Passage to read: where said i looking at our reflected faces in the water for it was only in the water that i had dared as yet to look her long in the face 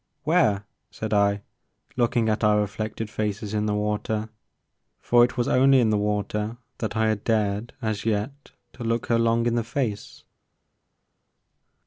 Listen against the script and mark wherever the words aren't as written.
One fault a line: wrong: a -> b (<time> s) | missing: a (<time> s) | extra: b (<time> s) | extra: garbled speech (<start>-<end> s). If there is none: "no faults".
no faults